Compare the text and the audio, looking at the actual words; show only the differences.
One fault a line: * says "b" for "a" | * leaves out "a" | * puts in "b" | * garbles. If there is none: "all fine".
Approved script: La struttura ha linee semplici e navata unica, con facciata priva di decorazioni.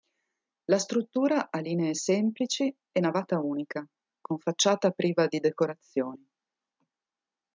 all fine